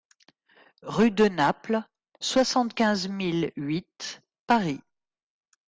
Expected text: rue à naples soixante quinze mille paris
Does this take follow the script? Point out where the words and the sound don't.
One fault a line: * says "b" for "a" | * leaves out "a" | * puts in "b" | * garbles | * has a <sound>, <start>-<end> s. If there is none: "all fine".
* says "de" for "à"
* puts in "huit"